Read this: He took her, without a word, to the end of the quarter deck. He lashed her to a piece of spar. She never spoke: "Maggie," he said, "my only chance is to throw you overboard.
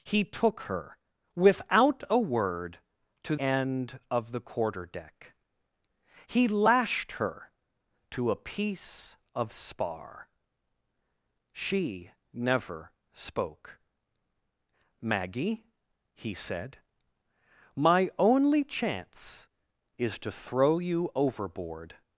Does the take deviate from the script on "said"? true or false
false